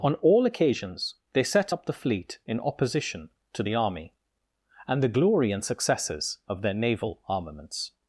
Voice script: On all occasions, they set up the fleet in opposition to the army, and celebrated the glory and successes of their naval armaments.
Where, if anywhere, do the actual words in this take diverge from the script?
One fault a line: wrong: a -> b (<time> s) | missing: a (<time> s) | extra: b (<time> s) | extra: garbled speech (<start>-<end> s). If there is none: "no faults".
missing: celebrated (5.0 s)